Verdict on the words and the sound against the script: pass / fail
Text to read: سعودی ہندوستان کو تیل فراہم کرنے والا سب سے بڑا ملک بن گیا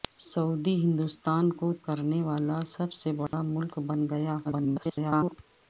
fail